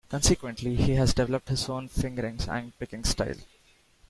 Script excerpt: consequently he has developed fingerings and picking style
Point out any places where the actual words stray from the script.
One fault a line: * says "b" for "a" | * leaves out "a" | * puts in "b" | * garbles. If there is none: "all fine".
* puts in "his own"